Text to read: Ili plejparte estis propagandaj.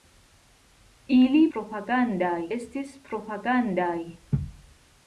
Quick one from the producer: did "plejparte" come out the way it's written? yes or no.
no